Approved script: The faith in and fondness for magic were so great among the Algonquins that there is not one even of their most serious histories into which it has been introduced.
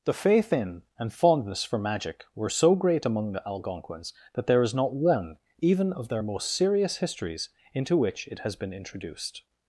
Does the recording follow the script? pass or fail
pass